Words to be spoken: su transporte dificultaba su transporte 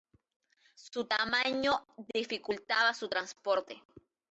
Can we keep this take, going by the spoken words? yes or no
no